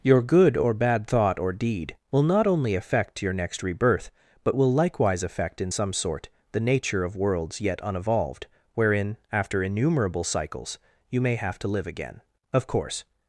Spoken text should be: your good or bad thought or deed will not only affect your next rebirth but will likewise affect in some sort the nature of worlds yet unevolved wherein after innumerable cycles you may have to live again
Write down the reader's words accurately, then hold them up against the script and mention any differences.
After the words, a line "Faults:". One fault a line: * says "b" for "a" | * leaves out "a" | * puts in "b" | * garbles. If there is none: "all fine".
your good or bad thought or deed will not only affect your next rebirth but will likewise affect in some sort the nature of worlds yet unevolved wherein after innumerable cycles you may have to live again of course
Faults:
* puts in "of course"